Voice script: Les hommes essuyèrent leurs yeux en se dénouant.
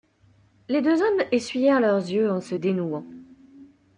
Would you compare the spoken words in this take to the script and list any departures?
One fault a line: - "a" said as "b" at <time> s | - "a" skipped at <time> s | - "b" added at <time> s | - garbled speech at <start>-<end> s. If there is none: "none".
- "deux" added at 0.8 s